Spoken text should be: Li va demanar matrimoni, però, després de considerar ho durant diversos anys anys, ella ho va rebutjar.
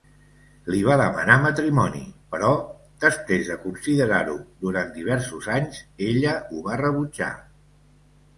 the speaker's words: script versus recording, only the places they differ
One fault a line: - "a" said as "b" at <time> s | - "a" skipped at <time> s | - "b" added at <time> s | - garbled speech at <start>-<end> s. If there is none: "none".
- "anys" skipped at 5.8 s